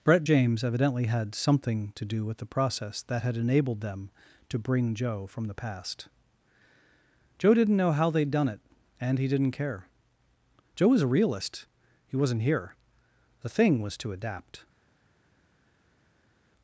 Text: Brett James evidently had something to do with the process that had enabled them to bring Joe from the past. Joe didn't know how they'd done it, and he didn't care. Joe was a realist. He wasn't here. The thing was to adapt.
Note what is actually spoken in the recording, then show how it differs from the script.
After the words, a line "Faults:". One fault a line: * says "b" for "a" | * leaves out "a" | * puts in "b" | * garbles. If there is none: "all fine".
Brett James evidently had something to do with the process that had enabled them to bring Joe from the past. Joe didn't know how they'd done it, and he didn't care. Joe was a realist. He wasn't here. The thing was to adapt.
Faults:
all fine